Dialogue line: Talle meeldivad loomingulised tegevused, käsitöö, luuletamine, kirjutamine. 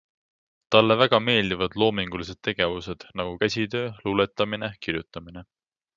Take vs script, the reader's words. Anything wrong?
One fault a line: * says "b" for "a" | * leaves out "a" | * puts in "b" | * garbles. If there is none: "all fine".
* puts in "väga"
* puts in "nagu"